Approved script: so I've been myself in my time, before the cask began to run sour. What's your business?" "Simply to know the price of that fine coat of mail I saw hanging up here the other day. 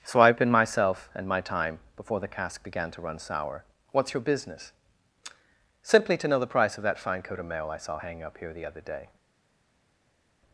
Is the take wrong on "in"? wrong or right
wrong